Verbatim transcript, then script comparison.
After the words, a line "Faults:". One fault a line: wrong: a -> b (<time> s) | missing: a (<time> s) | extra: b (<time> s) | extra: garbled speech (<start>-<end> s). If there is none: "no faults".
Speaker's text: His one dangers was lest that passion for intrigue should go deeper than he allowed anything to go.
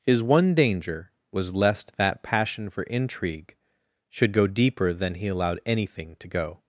His one danger was lest that passion for intrigue should go deeper than he allowed anything to go.
Faults:
wrong: dangers -> danger (0.5 s)